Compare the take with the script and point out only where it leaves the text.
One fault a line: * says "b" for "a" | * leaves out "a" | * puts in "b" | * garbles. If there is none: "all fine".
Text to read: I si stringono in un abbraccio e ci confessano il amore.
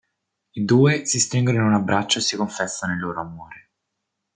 * puts in "due"
* says "si" for "ci"
* puts in "loro"